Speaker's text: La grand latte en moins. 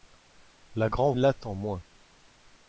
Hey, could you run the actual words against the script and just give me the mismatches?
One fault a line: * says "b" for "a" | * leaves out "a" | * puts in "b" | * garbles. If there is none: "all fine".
all fine